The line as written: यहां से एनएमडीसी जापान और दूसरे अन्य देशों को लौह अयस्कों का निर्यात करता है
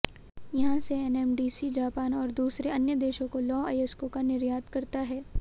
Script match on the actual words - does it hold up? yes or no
yes